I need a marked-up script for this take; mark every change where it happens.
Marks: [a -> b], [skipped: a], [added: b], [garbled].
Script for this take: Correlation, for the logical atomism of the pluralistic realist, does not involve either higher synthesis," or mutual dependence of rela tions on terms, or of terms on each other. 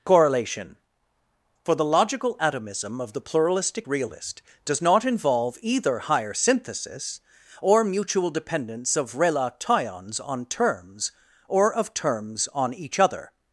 Correlation, for the logical atomism of the pluralistic realist, does not involve either higher synthesis," or mutual dependence of rela tions on terms, or of terms on each other.